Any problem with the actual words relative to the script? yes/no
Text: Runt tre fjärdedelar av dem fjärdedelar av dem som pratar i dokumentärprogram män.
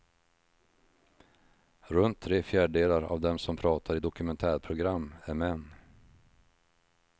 yes